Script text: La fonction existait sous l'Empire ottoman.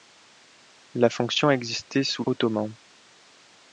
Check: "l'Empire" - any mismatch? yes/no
yes